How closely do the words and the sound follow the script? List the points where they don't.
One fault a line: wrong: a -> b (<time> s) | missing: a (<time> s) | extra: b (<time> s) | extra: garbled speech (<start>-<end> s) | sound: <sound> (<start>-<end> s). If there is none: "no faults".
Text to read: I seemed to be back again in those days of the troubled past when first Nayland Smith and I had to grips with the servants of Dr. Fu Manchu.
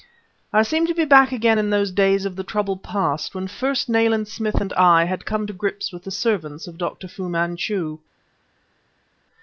extra: come (5.3 s)